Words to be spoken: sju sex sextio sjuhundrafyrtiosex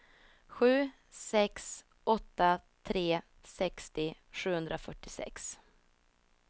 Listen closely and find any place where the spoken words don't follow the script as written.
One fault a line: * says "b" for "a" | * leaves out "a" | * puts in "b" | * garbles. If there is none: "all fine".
* puts in "åtta tre"